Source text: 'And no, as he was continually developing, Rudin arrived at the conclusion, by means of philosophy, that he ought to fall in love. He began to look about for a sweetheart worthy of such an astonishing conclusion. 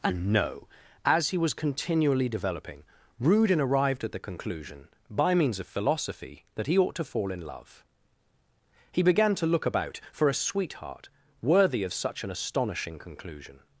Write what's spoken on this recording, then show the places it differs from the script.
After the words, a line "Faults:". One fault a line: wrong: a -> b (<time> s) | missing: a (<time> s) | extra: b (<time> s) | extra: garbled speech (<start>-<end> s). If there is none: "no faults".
'And no, as he was continually developing, Rudin arrived at the conclusion, by means of philosophy, that he ought to fall in love. He began to look about for a sweetheart worthy of such an astonishing conclusion.
Faults:
no faults